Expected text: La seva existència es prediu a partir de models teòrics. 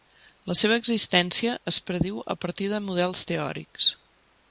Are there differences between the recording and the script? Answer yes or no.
no